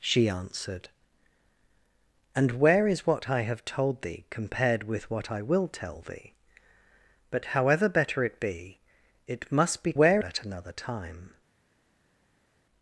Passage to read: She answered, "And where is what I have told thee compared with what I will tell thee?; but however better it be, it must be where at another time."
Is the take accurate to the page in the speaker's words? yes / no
yes